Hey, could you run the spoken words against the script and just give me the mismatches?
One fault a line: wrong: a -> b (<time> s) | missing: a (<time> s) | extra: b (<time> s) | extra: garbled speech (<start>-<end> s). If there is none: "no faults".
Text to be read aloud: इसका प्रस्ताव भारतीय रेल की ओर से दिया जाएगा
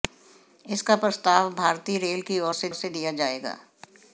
extra: से (2.7 s)